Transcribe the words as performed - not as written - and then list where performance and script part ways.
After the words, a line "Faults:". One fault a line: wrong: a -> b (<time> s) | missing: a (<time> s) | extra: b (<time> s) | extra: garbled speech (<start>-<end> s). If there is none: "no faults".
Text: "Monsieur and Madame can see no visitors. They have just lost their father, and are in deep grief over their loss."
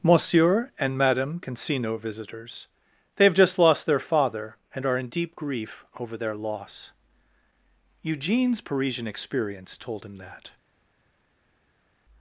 "Monsieur and Madame can see no visitors. They have just lost their father, and are in deep grief over their loss." Eugene's Parisian experience told him that
Faults:
extra: Eugene's Parisian experience told him that (8.0 s)